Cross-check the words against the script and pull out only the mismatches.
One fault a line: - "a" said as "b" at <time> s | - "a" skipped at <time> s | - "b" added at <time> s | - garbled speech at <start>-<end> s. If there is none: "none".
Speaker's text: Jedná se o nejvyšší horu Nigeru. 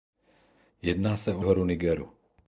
- "nejvyšší" skipped at 1.4 s